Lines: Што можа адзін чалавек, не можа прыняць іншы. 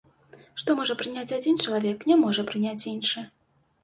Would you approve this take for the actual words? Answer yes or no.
no